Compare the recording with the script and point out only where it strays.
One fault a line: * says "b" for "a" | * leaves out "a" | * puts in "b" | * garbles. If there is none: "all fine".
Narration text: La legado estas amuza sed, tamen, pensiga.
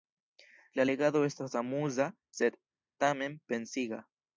all fine